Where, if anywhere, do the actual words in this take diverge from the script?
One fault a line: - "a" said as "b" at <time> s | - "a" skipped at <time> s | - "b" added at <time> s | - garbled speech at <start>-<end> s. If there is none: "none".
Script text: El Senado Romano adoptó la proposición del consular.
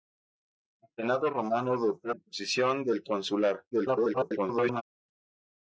- "la" skipped at 2.1 s
- garbled speech at 3.7-4.8 s